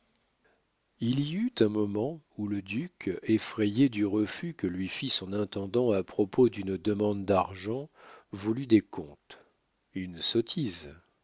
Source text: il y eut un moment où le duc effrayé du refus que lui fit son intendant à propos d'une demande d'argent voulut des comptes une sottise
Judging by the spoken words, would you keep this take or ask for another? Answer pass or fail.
pass